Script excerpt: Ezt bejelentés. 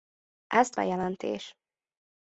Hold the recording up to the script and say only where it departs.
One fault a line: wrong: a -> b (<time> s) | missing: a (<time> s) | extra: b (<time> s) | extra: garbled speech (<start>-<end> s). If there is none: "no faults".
no faults